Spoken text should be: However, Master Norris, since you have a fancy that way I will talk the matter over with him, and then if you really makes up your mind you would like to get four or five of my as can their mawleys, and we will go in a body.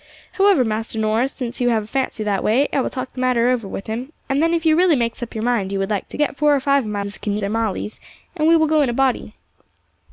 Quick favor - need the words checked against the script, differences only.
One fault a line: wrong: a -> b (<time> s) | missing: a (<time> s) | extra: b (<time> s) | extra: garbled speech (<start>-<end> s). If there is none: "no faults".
no faults